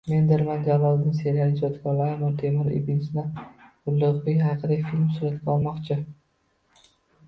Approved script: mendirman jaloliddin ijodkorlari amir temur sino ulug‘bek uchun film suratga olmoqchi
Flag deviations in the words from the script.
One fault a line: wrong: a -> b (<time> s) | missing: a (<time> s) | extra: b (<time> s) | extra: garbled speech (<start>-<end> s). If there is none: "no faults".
extra: seriali (1.2 s)
extra: ibn (2.8 s)
wrong: uchun -> haqida (4.5 s)